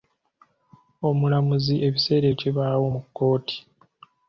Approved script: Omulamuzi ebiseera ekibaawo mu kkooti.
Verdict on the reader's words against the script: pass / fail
pass